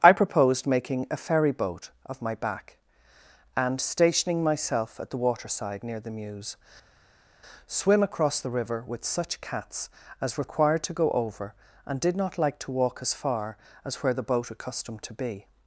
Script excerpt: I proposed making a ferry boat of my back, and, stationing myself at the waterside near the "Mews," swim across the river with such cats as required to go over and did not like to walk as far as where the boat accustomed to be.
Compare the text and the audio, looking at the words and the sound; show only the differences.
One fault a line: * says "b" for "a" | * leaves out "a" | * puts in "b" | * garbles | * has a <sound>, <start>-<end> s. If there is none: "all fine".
all fine